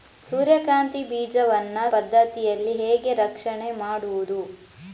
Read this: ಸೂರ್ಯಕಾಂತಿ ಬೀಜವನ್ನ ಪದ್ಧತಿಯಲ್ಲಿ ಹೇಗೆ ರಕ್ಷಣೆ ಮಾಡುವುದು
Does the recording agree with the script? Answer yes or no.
yes